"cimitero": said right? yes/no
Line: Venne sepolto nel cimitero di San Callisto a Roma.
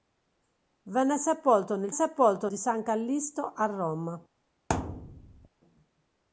no